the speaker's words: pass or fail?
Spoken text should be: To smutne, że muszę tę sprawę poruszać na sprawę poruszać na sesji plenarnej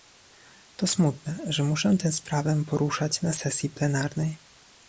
fail